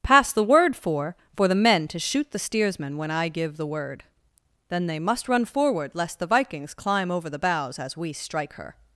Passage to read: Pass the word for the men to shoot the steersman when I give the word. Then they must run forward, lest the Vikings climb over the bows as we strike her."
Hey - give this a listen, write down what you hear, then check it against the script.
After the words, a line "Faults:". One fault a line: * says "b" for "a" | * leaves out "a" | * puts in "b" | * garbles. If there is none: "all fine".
Pass the word for for the men to shoot the steersman when I give the word. Then they must run forward, lest the Vikings climb over the bows as we strike her."
Faults:
* puts in "for"